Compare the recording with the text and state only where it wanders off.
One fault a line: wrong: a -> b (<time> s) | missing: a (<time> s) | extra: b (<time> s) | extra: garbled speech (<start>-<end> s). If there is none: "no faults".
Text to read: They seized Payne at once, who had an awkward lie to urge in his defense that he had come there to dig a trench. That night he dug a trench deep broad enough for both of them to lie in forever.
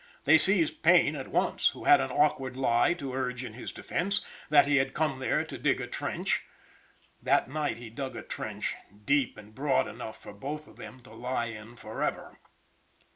extra: and (9.4 s)